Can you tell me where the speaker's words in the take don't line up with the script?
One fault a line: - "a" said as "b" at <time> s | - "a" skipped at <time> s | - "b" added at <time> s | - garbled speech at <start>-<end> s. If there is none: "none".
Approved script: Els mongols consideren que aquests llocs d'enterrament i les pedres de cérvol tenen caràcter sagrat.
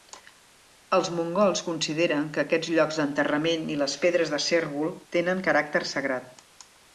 none